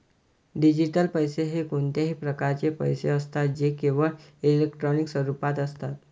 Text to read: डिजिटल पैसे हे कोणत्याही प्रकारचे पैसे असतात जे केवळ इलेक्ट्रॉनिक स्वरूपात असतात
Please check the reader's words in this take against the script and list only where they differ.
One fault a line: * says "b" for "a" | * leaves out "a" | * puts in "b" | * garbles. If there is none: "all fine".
all fine